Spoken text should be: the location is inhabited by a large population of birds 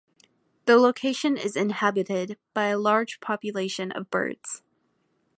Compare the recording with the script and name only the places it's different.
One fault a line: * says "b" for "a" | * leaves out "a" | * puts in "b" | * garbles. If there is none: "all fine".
all fine